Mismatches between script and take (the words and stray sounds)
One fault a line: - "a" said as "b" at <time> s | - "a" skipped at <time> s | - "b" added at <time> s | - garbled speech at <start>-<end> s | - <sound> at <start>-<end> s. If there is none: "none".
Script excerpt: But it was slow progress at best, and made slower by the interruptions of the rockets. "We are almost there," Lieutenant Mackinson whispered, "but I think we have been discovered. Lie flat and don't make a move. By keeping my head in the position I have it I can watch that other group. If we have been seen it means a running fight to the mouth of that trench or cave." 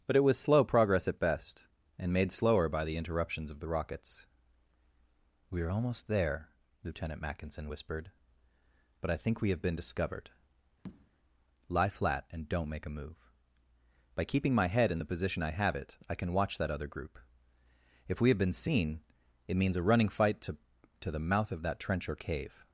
- tap at 10.8-11.1 s
- "to" added at 21.0 s